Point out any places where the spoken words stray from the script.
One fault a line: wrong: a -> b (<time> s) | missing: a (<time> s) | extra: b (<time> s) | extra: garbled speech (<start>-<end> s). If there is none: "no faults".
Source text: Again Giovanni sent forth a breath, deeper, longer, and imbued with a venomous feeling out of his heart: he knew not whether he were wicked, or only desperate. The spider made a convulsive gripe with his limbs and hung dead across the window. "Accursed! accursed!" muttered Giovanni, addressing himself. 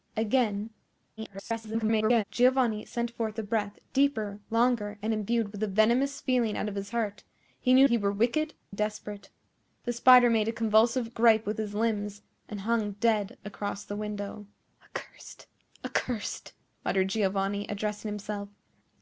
extra: garbled speech (1.2-2.2 s)
missing: not whether (7.9 s)
missing: or only (8.5 s)